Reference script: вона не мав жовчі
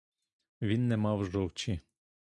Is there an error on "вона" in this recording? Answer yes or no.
yes